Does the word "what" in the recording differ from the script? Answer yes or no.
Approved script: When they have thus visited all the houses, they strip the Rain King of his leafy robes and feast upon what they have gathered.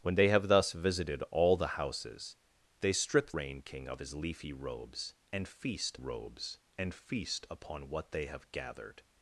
no